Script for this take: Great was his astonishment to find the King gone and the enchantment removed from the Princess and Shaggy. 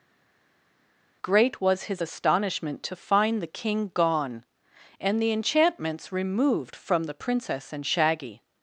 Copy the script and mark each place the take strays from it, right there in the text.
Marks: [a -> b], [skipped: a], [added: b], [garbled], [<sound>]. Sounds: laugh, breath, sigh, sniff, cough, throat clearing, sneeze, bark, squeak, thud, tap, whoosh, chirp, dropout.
Great was his astonishment to find the King gone and the [enchantment -> enchantments] removed from the Princess and Shaggy.